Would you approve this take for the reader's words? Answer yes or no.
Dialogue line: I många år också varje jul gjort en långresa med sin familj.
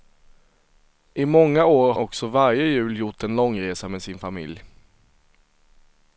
yes